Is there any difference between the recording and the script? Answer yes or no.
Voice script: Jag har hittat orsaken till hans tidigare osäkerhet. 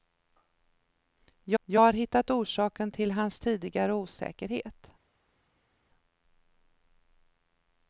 yes